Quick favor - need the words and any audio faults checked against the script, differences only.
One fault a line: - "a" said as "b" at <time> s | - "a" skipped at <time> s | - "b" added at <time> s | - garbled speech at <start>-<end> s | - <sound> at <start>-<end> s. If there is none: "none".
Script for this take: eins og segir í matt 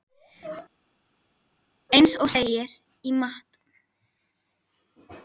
none